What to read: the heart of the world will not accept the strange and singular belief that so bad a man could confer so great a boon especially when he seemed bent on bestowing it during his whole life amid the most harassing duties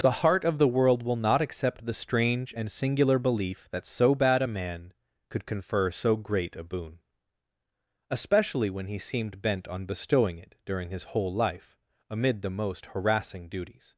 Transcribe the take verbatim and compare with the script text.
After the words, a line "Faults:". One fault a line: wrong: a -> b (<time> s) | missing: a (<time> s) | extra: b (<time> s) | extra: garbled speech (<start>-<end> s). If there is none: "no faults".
the heart of the world will not accept the strange and singular belief that so bad a man could confer so great a boon especially when he seemed bent on bestowing it during his whole life amid the most harassing duties
Faults:
no faults